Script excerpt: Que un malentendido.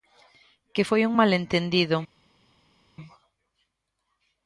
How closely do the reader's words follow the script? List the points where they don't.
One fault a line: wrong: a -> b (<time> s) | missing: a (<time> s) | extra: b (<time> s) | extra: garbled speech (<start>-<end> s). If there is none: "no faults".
extra: foi (0.9 s)